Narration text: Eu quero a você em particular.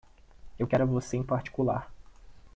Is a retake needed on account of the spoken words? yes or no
no